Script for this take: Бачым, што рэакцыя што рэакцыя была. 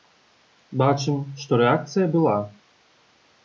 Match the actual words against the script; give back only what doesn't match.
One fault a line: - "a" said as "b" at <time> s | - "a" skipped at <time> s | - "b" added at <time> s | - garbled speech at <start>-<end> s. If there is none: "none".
- "што рэакцыя" skipped at 2.1 s